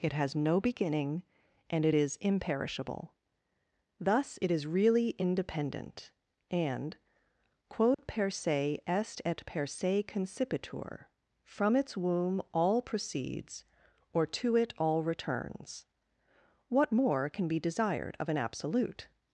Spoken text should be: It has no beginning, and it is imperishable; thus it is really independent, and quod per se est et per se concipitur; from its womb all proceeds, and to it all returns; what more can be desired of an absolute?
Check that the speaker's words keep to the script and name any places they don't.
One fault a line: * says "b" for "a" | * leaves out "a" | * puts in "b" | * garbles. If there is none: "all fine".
* says "or" for "and"